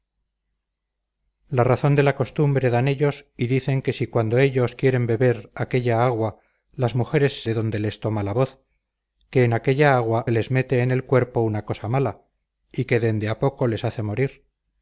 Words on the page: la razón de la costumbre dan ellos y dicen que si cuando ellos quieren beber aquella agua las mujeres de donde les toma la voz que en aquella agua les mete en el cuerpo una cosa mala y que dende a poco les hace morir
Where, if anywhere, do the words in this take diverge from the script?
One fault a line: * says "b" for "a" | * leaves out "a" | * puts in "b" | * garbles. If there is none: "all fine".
all fine